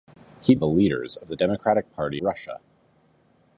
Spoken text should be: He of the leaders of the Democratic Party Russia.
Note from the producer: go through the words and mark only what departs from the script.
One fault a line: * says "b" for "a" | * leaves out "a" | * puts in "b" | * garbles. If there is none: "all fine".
all fine